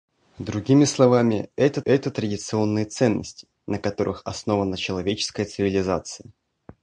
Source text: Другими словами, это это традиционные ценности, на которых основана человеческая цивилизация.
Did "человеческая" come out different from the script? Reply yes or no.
no